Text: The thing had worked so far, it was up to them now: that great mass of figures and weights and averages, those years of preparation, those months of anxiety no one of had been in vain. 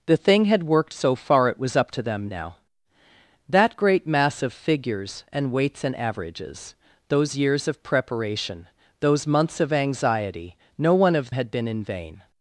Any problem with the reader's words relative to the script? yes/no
no